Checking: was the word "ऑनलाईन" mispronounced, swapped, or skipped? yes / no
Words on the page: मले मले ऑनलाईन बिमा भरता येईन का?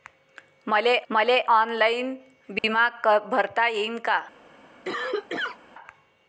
no